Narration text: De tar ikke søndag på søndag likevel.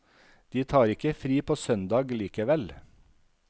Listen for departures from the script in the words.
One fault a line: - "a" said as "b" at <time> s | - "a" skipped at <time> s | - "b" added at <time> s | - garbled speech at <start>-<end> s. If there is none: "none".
- "søndag" said as "fri" at 1.1 s